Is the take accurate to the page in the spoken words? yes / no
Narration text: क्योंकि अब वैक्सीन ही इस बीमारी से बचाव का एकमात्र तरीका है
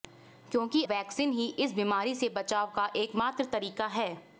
no